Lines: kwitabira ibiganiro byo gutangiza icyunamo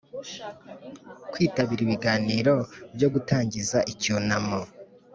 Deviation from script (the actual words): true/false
false